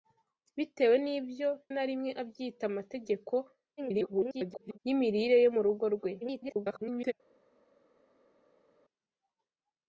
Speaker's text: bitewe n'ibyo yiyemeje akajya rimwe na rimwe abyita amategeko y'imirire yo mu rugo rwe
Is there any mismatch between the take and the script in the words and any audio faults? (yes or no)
yes